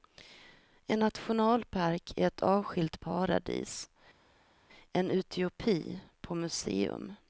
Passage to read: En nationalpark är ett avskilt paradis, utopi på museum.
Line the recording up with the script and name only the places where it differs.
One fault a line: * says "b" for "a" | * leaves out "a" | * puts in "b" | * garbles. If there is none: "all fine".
* puts in "en"